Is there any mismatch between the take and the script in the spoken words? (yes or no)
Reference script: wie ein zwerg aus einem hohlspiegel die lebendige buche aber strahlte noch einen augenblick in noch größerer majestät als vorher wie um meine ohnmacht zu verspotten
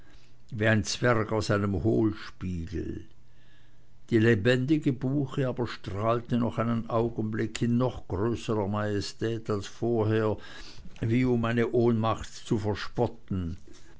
no